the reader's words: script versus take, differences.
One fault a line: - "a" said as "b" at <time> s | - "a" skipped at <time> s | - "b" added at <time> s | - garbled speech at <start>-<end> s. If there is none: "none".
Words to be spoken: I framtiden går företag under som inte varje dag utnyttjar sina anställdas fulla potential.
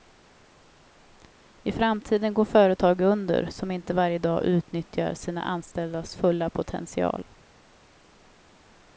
none